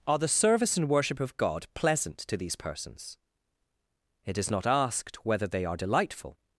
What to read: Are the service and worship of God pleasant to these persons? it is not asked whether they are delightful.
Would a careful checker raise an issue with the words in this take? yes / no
no